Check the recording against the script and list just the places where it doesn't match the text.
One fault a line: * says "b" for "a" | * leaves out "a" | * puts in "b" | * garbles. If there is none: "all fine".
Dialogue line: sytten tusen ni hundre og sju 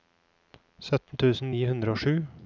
all fine